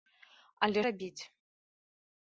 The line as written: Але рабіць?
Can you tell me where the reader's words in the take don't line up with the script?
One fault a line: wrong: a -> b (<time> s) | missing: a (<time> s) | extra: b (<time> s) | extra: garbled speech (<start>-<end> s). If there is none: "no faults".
no faults